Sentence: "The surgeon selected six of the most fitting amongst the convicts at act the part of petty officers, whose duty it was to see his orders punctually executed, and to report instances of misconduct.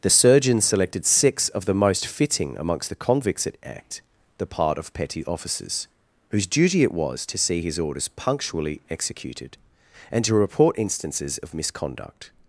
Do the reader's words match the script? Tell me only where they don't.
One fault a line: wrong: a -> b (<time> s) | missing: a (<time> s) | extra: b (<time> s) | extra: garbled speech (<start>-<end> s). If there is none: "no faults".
no faults